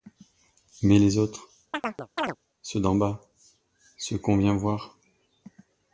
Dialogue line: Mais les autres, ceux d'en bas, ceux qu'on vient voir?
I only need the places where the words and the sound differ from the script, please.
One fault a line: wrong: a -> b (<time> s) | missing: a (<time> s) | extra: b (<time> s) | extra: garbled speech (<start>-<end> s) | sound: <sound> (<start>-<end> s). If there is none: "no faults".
sound: chirp (1.7-2.4 s)